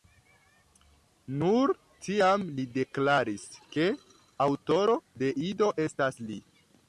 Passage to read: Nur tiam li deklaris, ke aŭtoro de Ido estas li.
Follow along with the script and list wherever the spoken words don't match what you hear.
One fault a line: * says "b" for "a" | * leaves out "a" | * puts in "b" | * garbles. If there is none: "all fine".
all fine